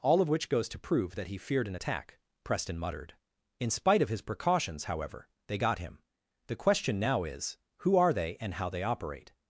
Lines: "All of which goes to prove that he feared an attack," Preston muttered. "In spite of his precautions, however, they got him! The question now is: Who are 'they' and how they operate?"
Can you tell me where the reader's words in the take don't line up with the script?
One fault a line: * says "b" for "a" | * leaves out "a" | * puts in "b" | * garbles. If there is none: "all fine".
all fine